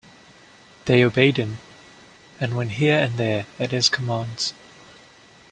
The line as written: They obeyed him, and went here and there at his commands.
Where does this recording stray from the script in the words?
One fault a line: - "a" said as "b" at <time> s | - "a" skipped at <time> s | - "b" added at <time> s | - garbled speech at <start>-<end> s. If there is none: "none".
none